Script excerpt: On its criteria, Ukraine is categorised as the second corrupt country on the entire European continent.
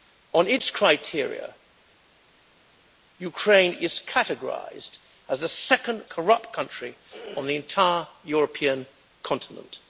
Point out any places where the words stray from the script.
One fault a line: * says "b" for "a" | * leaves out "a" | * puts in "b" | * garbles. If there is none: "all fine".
all fine